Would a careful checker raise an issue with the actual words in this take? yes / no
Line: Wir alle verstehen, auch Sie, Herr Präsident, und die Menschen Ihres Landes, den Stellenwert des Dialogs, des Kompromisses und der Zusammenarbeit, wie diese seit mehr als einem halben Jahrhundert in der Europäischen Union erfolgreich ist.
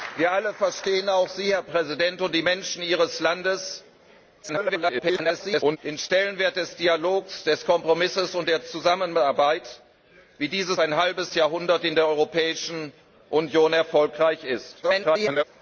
yes